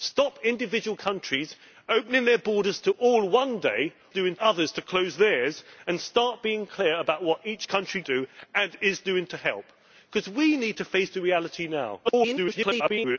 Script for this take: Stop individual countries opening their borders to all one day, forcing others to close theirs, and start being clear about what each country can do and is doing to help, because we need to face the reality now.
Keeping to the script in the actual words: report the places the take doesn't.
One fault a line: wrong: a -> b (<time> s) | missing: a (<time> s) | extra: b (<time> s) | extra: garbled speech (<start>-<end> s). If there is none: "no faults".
wrong: forcing -> doing (4.1 s)
missing: can (8.0 s)
extra: garbled speech (12.0-13.2 s)